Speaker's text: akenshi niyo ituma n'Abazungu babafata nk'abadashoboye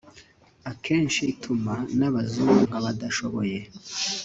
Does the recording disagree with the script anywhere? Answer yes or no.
yes